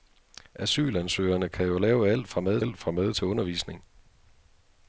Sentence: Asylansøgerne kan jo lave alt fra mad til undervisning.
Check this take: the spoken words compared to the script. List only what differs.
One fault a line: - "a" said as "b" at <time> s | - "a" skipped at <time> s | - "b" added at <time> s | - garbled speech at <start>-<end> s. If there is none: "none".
- "alt fra mad" added at 2.6 s